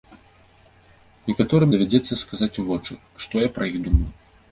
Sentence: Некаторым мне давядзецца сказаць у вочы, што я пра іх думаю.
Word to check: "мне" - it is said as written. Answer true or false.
false